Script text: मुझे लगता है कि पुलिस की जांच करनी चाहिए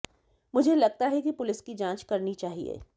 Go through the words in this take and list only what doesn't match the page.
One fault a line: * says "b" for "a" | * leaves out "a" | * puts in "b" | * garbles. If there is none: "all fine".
all fine